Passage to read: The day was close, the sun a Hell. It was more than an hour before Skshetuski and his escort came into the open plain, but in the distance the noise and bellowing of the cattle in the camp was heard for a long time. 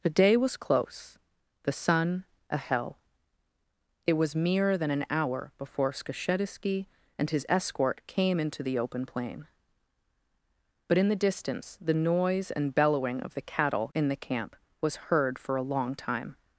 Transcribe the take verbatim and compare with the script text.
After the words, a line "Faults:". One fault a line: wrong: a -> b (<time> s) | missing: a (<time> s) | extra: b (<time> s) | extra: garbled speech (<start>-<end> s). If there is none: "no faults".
The day was close, the sun a Hell. It was mere than an hour before Skshetuski and his escort came into the open plain, but in the distance the noise and bellowing of the cattle in the camp was heard for a long time.
Faults:
wrong: more -> mere (4.3 s)